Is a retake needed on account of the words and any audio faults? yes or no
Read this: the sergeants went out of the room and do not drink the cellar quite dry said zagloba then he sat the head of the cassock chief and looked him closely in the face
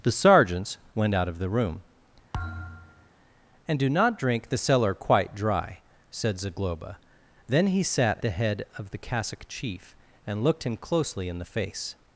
yes